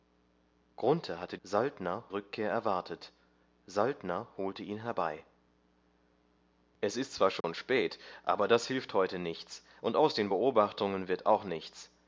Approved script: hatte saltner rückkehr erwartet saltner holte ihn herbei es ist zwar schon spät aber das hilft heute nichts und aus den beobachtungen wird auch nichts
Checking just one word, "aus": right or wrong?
right